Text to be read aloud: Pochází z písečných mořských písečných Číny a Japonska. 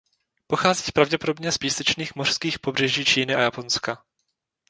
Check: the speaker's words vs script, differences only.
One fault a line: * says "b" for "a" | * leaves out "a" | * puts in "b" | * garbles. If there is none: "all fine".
* puts in "pravděpodobně"
* says "pobřeží" for "písečných"